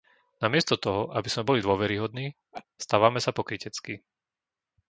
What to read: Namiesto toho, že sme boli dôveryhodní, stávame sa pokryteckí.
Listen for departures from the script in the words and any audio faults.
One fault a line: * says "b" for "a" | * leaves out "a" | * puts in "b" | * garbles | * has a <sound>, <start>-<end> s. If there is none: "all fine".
* says "aby" for "že"
* has a laugh, 2.5-2.7 s